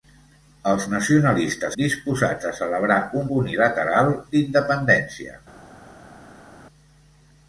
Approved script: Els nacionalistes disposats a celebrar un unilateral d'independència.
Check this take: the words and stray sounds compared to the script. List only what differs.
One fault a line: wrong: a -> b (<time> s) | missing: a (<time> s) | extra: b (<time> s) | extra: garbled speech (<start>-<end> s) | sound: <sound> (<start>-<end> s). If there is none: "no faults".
no faults